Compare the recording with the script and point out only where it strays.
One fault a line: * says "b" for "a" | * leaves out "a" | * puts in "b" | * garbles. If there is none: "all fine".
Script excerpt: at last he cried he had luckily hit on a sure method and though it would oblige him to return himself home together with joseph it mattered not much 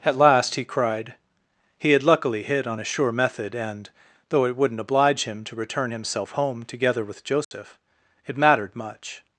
* says "wouldn't" for "would"
* leaves out "not"